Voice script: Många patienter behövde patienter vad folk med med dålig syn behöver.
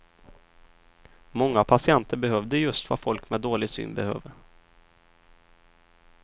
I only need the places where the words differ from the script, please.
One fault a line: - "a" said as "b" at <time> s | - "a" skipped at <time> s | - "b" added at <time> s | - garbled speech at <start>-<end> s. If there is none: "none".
- "patienter" said as "just" at 2.6 s
- "med" skipped at 3.4 s